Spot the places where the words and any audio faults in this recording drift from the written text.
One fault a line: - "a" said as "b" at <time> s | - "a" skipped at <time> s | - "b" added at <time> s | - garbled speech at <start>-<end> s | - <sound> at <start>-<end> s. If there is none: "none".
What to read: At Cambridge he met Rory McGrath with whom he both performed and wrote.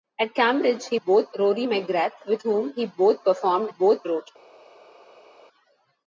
- "met" said as "both" at 0.9 s
- "and" said as "both" at 3.7 s